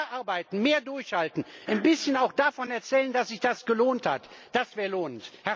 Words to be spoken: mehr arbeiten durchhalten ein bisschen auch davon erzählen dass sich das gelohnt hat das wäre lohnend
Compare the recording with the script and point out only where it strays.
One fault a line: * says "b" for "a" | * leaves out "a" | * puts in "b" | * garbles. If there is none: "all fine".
* puts in "mehr"